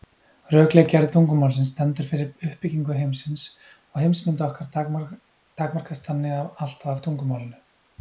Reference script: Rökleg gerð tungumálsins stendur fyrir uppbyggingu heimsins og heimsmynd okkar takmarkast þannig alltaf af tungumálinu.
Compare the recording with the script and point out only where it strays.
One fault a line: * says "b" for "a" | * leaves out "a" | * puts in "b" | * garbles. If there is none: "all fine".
all fine